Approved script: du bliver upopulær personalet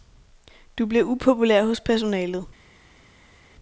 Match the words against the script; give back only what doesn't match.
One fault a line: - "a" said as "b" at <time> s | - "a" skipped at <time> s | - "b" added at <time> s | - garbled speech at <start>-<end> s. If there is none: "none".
- "hos" added at 1.6 s